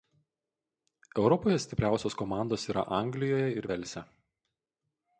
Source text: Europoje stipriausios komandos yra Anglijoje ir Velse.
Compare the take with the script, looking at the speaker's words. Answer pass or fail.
pass